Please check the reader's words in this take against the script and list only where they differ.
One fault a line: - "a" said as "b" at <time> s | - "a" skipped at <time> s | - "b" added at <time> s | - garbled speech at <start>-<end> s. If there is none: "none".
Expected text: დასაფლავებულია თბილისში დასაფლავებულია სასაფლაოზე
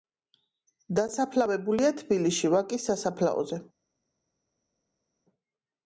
- "დასაფლავებულია" said as "ვაკის" at 2.6 s